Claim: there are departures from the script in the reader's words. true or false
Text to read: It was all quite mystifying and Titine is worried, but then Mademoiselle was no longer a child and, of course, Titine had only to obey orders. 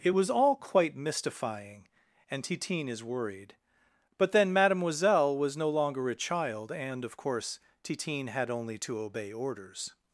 false